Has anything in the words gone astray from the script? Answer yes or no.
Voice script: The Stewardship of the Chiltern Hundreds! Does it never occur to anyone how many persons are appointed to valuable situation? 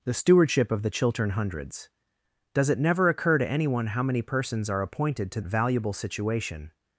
no